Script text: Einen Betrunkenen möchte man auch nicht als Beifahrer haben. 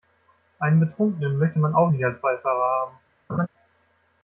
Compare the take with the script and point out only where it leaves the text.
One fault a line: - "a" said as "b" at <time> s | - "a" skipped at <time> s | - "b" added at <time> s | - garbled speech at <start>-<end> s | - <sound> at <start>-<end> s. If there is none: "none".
- laugh at 3.3-3.5 s